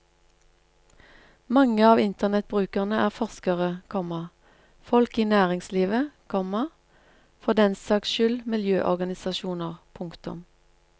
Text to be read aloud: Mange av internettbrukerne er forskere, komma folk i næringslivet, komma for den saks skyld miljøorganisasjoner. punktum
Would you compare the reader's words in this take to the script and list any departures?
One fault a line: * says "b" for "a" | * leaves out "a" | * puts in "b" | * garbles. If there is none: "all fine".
all fine